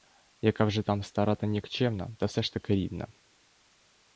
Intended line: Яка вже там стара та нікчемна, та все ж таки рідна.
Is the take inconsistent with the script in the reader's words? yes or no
no